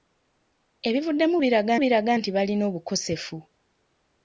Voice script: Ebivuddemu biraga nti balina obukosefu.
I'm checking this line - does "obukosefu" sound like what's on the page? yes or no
yes